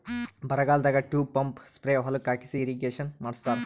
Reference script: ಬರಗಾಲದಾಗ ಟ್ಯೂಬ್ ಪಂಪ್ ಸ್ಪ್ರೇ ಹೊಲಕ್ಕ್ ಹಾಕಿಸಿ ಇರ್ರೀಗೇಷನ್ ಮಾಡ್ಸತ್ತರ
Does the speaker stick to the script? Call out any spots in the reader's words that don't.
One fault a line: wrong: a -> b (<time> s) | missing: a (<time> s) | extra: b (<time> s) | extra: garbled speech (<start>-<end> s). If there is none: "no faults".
no faults